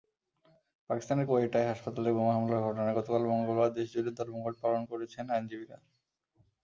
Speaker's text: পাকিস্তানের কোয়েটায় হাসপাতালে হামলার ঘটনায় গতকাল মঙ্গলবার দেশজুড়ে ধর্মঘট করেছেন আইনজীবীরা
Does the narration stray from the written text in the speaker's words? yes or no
yes